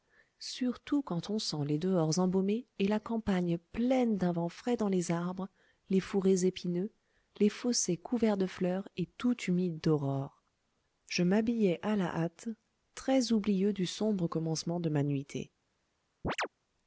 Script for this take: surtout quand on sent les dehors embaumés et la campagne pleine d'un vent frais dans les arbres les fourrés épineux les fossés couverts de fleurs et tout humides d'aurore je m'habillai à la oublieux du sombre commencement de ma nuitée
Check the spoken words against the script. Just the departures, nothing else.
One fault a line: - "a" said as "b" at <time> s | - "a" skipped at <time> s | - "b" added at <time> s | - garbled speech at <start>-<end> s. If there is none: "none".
- "hâte très" added at 12.1 s